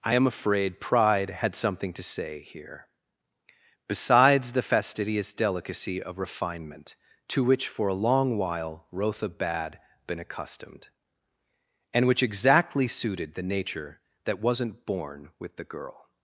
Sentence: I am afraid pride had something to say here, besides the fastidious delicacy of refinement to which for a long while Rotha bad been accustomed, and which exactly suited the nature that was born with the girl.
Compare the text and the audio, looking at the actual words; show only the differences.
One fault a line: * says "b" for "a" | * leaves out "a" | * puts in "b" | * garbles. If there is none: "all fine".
* says "wasn't" for "was"